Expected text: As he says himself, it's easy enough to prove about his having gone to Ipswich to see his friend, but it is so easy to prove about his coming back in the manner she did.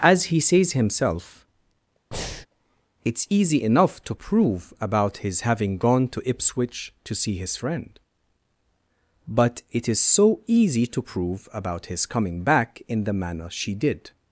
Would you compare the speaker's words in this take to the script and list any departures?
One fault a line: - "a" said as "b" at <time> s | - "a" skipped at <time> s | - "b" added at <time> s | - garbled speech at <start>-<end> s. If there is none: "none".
none